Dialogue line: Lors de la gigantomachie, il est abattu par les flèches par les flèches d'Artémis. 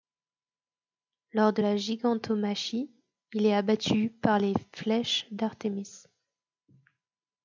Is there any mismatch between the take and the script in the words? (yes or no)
yes